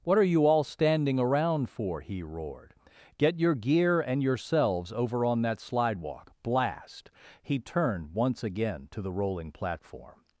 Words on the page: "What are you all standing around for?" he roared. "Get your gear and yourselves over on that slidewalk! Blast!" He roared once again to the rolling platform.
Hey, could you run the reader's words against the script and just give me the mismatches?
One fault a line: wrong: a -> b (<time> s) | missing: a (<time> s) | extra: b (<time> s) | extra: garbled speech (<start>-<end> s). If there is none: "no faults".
wrong: roared -> turned (7.6 s)